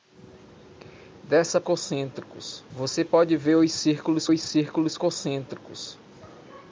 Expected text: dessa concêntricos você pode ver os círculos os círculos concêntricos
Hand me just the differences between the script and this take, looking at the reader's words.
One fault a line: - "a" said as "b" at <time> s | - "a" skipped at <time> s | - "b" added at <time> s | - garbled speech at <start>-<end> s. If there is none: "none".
none